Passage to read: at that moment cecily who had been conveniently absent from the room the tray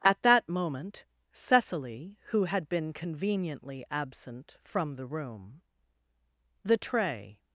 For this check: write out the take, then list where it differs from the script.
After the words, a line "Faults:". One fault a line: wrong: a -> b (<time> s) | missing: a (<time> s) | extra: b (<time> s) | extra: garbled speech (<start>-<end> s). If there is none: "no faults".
at that moment cecily who had been conveniently absent from the room the tray
Faults:
no faults